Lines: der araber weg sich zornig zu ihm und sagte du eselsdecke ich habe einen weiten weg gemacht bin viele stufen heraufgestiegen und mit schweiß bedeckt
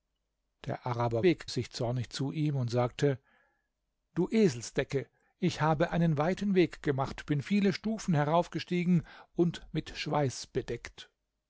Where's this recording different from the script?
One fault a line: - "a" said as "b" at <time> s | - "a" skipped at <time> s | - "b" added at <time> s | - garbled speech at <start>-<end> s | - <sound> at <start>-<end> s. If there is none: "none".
none